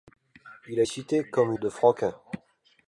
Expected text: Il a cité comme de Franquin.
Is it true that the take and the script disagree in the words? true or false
false